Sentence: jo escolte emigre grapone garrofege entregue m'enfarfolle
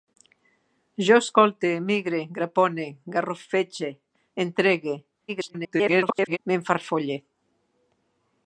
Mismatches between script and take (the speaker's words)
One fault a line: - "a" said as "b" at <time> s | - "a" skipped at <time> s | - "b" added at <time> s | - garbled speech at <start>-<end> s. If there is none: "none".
- garbled speech at 5.3-6.4 s